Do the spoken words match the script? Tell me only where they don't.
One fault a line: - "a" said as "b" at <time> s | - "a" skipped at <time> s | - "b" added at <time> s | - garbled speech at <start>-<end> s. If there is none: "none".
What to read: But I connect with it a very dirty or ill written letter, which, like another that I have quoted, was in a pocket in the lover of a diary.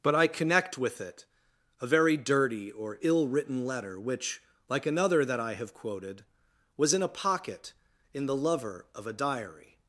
none